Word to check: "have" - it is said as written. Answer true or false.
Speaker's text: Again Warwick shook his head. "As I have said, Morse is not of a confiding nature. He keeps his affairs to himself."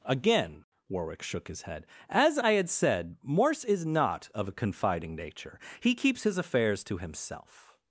false